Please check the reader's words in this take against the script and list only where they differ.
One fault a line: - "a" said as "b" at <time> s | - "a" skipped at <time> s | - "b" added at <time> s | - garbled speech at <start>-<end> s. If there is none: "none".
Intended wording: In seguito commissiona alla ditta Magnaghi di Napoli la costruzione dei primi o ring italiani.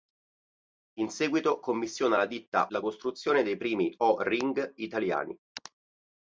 - "Magnaghi di Napoli" skipped at 2.7 s